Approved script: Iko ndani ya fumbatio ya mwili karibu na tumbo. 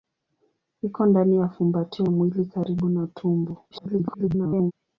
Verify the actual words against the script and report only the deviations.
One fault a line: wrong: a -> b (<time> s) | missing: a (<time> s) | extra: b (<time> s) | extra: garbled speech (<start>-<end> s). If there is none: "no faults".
missing: ya (2.0 s)
extra: garbled speech (3.7-4.7 s)